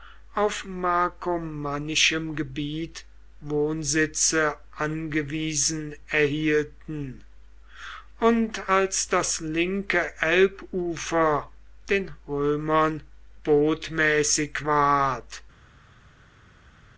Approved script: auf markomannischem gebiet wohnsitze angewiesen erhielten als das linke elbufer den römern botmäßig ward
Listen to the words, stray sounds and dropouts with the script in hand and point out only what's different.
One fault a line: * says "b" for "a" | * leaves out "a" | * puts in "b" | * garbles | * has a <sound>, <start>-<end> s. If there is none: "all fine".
* puts in "und"